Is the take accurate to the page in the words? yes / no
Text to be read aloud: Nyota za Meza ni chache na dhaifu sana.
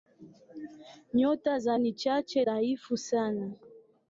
no